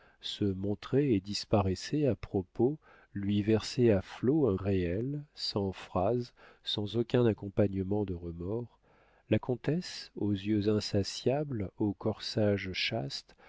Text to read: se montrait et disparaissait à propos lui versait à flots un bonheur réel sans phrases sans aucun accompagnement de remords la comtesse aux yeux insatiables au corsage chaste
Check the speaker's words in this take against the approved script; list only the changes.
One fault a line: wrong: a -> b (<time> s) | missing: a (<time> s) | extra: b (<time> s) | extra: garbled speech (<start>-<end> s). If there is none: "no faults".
missing: bonheur (4.5 s)